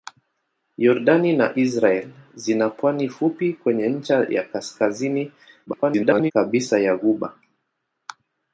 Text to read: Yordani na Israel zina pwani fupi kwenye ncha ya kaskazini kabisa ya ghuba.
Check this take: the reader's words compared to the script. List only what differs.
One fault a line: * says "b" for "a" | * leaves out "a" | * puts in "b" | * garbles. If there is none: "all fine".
* garbles